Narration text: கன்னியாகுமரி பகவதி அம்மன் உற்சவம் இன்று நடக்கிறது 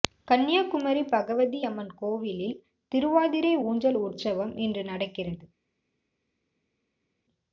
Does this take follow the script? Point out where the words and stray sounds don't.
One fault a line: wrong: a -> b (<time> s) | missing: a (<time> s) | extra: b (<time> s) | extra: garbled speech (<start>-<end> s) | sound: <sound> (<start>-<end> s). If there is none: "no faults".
extra: கோவிலில் திருவாதிரை ஊஞ்சல் (2.0 s)